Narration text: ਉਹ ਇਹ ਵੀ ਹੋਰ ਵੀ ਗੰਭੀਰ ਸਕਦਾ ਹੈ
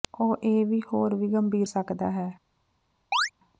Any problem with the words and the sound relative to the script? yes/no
yes